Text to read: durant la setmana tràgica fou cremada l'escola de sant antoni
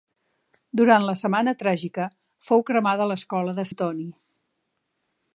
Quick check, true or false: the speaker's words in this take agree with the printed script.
false